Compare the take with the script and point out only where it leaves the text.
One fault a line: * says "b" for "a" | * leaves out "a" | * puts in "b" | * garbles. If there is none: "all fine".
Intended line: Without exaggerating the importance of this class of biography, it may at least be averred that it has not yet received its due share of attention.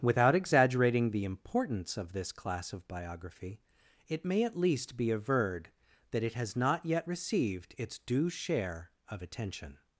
all fine